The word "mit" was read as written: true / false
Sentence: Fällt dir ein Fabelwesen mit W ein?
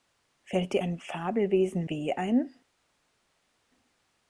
false